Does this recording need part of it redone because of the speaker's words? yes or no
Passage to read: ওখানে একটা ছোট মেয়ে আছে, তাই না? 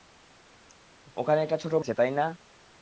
yes